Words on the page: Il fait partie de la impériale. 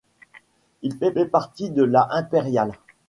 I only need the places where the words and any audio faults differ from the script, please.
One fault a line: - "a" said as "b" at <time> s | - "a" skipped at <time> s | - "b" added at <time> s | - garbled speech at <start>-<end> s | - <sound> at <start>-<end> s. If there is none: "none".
- "fait" added at 1.1 s